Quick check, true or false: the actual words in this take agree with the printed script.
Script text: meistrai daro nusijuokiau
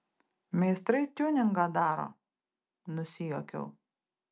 false